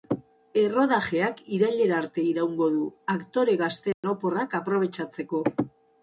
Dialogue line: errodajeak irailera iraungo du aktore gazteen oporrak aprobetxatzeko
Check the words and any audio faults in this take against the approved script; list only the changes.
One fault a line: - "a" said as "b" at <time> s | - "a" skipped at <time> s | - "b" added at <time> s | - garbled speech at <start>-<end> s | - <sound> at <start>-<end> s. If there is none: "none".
- "arte" added at 2.0 s
- dropout at 3.9-4.0 s